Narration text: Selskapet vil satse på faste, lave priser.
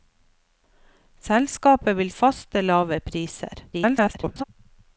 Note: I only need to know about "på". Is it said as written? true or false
false